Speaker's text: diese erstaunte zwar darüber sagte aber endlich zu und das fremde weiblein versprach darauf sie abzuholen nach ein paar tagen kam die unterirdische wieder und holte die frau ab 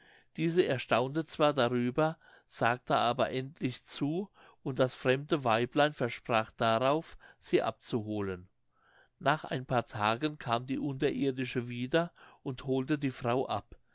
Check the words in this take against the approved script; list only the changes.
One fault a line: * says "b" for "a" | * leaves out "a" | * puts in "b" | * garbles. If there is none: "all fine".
all fine